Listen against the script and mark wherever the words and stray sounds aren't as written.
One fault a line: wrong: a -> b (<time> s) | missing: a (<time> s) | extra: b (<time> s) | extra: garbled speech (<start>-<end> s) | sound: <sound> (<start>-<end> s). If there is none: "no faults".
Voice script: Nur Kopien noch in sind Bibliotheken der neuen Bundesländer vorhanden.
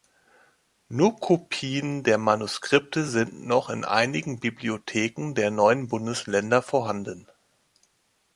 extra: der Manuskripte sind (2.0 s)
wrong: sind -> einigen (3.8 s)